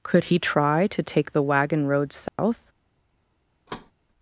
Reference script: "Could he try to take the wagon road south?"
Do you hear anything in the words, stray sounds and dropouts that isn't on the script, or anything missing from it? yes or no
yes